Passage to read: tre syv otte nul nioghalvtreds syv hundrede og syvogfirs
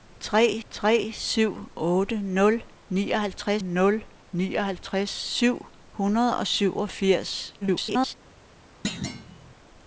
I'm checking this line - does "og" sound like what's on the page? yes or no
yes